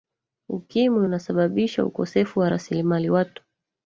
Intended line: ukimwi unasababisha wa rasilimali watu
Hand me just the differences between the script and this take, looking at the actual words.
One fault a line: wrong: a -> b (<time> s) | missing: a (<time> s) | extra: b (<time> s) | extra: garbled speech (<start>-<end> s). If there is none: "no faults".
extra: ukosefu (1.9 s)